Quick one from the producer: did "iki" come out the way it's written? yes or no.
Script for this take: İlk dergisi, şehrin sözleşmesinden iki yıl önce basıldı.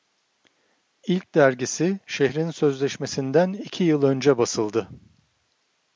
yes